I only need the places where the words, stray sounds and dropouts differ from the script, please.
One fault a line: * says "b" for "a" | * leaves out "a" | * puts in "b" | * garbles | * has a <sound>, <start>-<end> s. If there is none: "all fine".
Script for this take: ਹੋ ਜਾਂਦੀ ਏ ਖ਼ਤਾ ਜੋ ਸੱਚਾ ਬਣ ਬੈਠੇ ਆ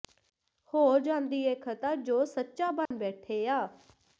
* has a dropout, 2.9-2.9 s